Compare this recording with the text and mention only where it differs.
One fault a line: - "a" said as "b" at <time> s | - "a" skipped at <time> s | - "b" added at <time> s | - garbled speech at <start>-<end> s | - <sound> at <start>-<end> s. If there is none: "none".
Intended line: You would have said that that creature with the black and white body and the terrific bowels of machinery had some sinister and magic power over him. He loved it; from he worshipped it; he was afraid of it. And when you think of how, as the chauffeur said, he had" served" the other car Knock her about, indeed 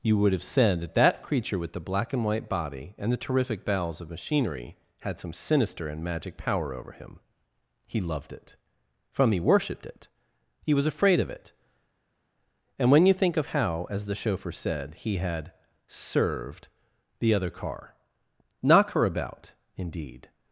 none